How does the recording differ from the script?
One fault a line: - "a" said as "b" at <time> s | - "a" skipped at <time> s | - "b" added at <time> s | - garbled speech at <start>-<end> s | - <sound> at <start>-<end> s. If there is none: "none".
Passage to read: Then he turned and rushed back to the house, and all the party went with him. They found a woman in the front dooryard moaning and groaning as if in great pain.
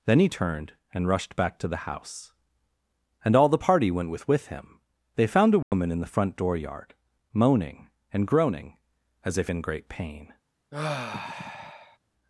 - "with" added at 4.3 s
- dropout at 5.6-5.7 s
- sigh at 10.7-12.0 s